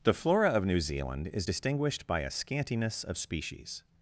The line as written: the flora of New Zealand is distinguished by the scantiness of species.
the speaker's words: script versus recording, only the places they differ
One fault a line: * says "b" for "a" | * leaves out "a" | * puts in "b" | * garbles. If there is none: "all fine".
* says "a" for "the"